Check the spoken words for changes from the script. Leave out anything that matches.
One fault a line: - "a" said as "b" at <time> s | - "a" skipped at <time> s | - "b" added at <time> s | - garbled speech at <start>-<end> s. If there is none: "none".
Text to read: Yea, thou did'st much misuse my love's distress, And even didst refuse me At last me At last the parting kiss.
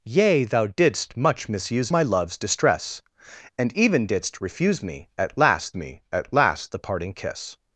none